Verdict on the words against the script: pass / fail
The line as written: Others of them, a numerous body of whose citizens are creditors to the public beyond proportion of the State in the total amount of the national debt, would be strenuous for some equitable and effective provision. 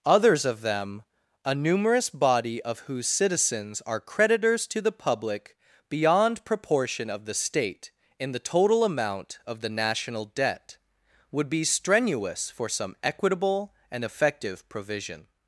pass